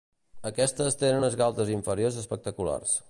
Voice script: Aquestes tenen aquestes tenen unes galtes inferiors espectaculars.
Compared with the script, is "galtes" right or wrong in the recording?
right